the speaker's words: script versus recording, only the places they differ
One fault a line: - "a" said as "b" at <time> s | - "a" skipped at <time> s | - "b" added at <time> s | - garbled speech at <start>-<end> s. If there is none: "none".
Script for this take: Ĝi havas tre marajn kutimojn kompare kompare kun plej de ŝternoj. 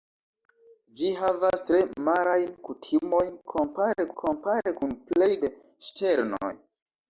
none